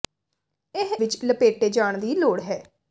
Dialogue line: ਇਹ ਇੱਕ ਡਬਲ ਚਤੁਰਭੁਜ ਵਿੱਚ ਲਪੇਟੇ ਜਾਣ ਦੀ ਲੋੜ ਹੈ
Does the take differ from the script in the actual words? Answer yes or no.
yes